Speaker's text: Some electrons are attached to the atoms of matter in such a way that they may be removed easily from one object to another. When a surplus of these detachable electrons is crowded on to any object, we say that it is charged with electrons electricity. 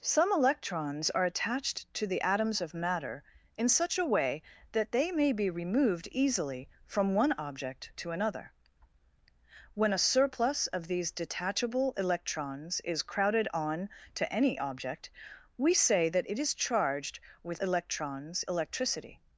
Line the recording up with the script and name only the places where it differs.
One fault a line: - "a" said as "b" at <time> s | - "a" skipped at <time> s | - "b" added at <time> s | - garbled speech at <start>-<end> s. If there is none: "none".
none